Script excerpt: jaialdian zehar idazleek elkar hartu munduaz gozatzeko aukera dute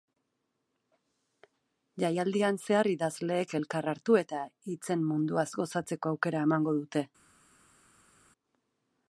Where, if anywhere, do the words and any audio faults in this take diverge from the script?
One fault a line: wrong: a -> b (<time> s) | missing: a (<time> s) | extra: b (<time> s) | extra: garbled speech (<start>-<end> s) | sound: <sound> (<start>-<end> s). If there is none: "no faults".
extra: eta hitzen (4.2 s)
extra: emango (6.5 s)